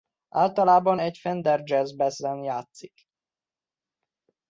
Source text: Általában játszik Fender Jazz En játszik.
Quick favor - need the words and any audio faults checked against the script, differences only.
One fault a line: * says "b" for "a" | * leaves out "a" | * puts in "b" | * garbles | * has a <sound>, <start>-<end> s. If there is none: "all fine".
* says "egy" for "játszik"
* puts in "Bass"